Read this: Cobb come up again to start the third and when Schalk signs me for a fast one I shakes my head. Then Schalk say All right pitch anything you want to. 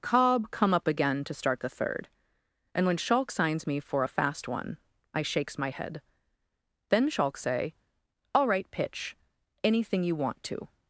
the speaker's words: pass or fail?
pass